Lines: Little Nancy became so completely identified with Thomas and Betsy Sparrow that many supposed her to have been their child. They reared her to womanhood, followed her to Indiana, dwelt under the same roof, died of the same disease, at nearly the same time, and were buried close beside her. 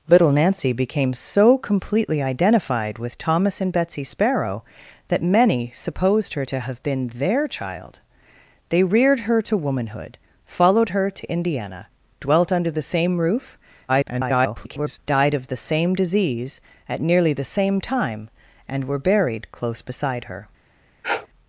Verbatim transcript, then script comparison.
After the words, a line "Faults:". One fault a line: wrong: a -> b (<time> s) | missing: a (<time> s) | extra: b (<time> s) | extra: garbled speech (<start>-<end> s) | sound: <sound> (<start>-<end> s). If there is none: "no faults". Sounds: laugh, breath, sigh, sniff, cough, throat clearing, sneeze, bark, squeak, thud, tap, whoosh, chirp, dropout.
Little Nancy became so completely identified with Thomas and Betsy Sparrow that many supposed her to have been their child. They reared her to womanhood, followed her to Indiana, dwelt under the same roof, [garbled] died of the same disease, at nearly the same time, and were buried close beside her.
Faults:
extra: garbled speech (13.9-15.0 s)
sound: sniff (21.0-21.3 s)